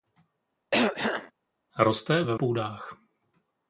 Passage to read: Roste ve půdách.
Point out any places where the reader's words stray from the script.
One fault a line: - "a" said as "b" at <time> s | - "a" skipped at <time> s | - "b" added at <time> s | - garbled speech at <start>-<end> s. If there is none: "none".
none